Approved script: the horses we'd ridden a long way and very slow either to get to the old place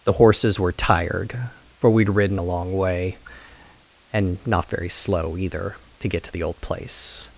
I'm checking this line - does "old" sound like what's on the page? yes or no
yes